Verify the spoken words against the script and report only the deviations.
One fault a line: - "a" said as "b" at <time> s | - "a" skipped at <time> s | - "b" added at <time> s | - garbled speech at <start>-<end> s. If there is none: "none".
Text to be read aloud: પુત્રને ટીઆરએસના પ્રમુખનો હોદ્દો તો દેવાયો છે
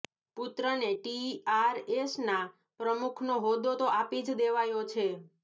- "આપી જ" added at 3.9 s